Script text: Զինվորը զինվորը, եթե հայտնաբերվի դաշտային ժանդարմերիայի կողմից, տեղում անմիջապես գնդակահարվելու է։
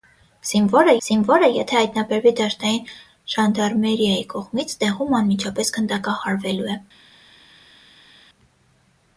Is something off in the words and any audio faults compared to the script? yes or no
no